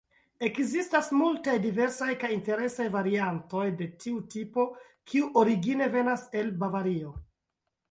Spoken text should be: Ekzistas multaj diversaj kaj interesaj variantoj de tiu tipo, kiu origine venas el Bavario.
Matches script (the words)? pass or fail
pass